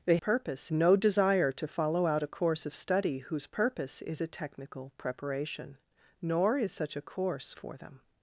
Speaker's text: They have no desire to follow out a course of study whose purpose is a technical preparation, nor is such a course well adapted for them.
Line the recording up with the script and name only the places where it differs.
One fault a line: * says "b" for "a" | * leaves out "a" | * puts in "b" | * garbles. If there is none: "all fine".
* says "purpose" for "have"
* leaves out "well adapted"